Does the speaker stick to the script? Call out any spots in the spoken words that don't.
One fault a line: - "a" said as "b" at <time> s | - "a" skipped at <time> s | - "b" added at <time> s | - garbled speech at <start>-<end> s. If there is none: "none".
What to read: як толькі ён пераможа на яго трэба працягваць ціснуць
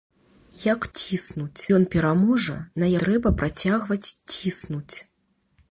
- "толькі" said as "ціснуць" at 1.0 s
- "яго" skipped at 2.9 s